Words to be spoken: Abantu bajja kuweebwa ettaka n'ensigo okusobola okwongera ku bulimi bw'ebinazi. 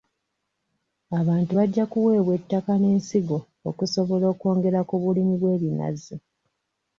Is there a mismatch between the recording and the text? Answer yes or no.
no